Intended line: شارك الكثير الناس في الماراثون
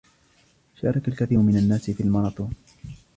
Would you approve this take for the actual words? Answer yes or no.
no